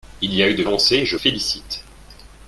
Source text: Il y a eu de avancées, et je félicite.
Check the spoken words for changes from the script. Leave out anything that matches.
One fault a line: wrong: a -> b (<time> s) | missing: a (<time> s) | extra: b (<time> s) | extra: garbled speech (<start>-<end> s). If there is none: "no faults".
no faults